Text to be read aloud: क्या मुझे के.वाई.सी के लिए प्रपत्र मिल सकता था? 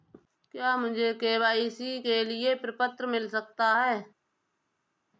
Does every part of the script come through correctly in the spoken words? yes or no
no